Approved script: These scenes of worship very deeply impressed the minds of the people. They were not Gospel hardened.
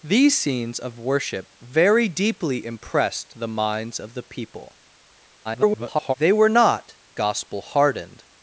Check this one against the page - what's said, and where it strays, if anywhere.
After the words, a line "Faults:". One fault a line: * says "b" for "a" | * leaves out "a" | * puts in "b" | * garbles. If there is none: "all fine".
These scenes of worship very deeply impressed the minds of the people. [garbled] They were not Gospel hardened.
Faults:
* garbles